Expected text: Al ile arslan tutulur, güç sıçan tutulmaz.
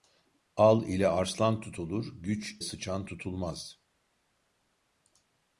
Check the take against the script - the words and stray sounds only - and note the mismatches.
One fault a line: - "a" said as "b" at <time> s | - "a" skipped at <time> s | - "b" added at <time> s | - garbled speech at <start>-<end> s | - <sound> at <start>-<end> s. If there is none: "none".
none